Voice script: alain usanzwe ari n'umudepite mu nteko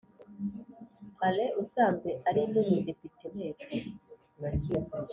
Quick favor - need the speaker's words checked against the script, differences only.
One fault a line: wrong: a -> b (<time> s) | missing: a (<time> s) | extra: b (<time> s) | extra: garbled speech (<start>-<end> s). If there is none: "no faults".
missing: mu (3.2 s)